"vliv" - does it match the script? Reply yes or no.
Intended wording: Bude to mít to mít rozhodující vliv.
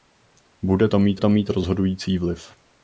yes